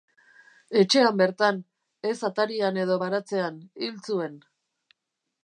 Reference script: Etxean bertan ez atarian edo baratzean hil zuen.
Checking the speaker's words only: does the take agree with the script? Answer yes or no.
yes